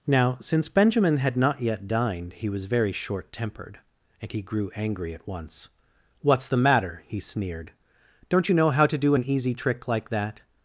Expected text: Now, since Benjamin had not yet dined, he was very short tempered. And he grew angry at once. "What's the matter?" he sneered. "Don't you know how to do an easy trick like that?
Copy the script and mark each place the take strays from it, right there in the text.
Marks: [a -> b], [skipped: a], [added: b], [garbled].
Now, since Benjamin had not yet dined, he was very short tempered. And he grew angry at once. "What's the matter?" he sneered. "Don't you know how to do an easy trick like that?